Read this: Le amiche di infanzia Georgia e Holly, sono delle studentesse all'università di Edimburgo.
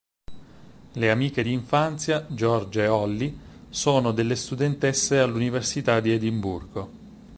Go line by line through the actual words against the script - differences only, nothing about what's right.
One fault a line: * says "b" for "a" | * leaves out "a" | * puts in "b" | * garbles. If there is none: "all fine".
all fine